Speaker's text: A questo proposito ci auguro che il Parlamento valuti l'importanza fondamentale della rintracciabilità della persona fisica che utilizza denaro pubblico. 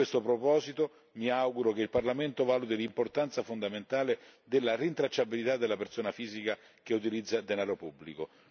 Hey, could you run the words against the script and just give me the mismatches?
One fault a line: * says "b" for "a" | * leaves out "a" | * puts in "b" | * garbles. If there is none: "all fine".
* says "mi" for "ci"